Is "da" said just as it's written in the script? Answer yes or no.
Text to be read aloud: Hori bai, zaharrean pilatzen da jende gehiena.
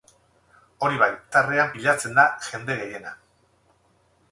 yes